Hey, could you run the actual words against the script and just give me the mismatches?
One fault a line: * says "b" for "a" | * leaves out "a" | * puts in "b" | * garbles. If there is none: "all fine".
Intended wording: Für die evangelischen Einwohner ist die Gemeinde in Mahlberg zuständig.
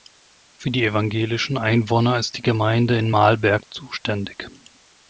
all fine